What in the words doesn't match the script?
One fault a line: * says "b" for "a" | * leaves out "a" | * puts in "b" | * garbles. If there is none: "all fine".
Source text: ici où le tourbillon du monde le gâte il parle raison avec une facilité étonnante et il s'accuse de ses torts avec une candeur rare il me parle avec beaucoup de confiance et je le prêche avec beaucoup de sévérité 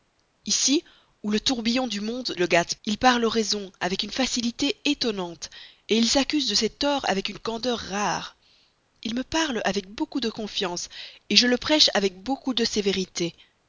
all fine